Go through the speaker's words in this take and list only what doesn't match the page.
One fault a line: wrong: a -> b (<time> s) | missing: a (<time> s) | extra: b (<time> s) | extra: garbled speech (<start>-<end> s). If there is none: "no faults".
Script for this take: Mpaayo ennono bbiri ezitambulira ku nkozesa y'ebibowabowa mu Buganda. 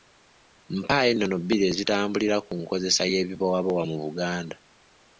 no faults